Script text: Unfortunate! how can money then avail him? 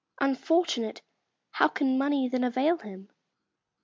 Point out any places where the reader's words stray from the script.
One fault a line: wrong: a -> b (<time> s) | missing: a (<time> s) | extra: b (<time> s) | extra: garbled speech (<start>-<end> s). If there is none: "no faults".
no faults